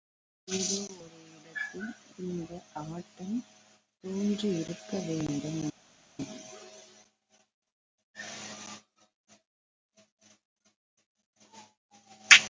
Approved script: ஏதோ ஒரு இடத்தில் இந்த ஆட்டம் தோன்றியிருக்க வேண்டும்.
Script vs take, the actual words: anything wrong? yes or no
no